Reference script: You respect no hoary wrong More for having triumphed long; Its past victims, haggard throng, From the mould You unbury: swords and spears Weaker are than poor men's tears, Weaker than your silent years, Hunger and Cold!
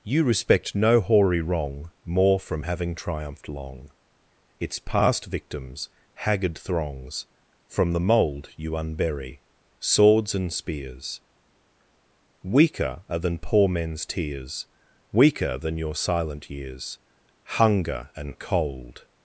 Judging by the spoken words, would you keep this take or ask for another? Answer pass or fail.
fail